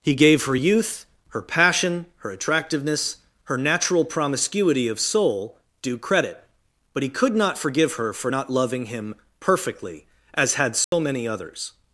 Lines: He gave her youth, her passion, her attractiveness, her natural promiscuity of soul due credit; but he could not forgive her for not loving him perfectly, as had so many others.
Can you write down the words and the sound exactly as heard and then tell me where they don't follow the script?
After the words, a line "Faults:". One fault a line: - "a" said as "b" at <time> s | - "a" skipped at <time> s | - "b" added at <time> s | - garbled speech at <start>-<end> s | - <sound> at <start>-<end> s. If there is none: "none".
He gave her youth, her passion, her attractiveness, her natural promiscuity of soul due credit; but he could not forgive her for not loving him perfectly, as had so many others.
Faults:
- dropout at 10.8-10.9 s